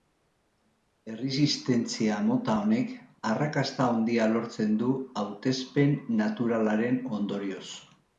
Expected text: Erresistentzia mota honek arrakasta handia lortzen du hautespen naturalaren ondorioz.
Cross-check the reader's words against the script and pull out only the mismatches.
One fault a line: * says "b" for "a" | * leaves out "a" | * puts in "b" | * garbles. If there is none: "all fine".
all fine